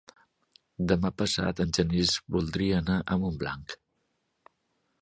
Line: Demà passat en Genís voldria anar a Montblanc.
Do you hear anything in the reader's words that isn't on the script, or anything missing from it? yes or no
no